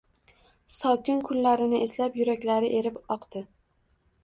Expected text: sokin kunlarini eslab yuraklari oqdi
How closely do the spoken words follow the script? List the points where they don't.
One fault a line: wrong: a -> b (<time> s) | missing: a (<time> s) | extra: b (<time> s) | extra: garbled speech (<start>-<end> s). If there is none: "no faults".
extra: erib (2.8 s)